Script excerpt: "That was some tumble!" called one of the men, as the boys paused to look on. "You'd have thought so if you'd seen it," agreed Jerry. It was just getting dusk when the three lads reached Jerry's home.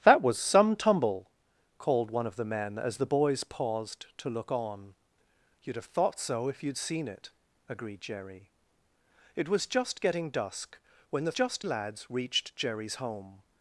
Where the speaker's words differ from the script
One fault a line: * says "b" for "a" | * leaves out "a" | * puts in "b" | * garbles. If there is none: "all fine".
* says "just" for "three"